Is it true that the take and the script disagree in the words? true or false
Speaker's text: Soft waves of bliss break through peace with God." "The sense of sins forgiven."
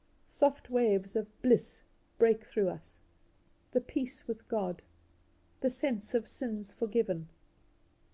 true